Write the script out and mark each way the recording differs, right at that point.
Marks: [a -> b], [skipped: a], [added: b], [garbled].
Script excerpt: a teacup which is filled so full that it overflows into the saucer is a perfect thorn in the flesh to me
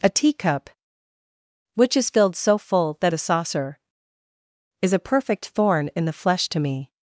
a teacup which is filled so full that [skipped: it overflows into] the saucer is a perfect thorn in the flesh to me